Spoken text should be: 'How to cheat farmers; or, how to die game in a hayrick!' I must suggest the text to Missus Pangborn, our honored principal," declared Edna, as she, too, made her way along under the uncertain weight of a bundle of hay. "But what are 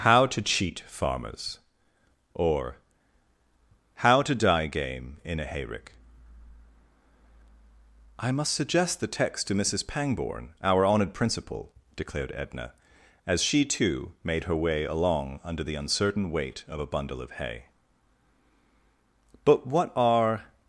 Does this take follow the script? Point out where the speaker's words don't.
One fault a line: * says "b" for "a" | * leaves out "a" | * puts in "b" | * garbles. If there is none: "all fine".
all fine